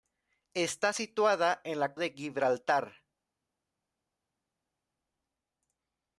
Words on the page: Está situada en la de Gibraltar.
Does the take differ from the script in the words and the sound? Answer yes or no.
no